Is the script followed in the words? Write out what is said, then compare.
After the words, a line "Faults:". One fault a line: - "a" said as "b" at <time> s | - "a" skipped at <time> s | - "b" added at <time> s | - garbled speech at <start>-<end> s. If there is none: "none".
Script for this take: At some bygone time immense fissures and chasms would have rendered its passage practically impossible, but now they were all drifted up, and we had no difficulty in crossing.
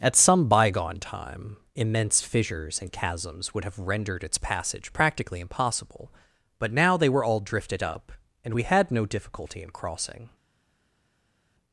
At some bygone time immense fissures and chasms would have rendered its passage practically impossible, but now they were all drifted up, and we had no difficulty in crossing.
Faults:
none